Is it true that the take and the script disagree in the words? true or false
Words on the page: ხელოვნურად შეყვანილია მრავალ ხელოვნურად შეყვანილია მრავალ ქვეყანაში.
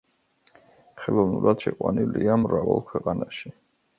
true